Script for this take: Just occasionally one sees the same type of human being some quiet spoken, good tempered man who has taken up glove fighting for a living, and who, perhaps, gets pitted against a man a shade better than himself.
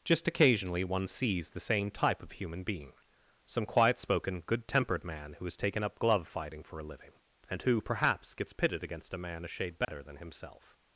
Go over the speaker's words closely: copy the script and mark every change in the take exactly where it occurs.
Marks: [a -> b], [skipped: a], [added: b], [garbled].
Just occasionally one sees the same type of human being some quiet spoken, good tempered man who has taken up glove fighting for a living, and who, perhaps, gets pitted against a man a shade better than himself.